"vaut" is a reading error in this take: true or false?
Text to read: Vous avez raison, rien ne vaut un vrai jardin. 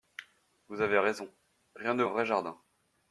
true